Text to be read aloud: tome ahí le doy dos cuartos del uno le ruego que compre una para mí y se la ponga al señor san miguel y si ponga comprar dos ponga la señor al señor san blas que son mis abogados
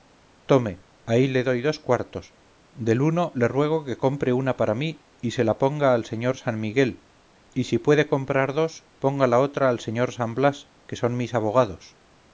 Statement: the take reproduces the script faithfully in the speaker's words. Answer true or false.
false